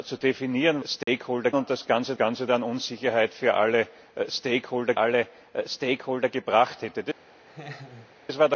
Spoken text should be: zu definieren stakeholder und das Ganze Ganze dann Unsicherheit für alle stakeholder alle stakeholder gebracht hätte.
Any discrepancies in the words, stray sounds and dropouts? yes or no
yes